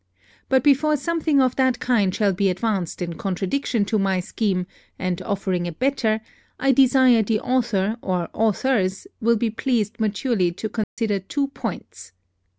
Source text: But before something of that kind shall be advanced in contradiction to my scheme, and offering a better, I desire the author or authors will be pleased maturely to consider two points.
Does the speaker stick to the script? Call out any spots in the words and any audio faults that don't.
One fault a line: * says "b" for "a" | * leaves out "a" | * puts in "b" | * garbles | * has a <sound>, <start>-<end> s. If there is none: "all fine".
* has a dropout, 10.8-11.0 s